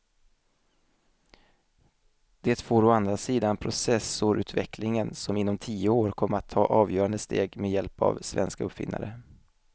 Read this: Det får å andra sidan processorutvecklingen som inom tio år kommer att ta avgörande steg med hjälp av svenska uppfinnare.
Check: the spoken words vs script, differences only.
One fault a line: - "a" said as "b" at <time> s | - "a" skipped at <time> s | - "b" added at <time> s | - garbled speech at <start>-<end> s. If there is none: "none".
none